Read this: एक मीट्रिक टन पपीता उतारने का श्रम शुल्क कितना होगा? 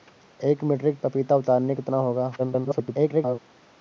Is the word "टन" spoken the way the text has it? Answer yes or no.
no